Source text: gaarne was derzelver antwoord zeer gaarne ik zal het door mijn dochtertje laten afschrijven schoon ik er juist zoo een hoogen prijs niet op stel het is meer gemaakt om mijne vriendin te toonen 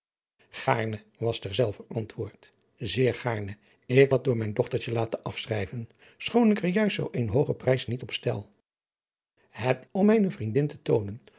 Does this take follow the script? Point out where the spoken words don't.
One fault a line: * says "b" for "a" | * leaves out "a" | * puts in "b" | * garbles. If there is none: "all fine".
* leaves out "zal"
* leaves out "is meer gemaakt"